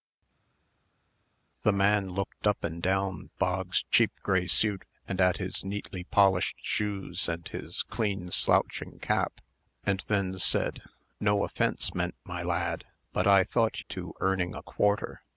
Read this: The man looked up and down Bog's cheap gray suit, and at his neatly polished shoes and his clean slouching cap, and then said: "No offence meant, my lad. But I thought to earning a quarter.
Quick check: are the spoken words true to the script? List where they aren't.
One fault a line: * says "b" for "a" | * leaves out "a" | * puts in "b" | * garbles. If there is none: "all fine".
all fine